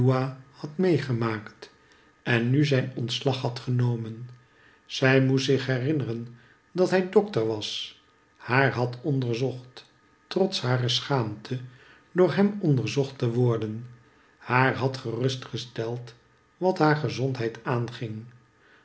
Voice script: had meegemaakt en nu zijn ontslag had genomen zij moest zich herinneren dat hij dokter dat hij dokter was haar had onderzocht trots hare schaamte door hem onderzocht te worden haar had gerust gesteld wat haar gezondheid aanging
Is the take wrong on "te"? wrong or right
right